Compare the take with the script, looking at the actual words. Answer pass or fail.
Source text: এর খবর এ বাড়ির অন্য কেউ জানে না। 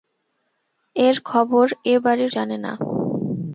fail